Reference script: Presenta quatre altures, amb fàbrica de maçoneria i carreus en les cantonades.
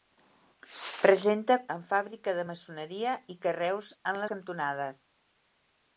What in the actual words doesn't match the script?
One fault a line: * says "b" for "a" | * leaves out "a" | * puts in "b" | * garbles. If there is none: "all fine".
* leaves out "quatre altures"
* leaves out "les"